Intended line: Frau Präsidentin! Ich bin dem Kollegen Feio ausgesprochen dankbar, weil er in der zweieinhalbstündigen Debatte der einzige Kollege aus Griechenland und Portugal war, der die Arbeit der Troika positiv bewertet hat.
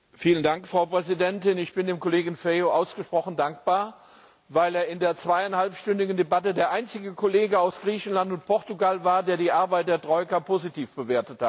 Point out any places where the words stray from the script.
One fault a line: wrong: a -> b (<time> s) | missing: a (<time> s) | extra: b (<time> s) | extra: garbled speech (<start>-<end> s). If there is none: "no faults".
no faults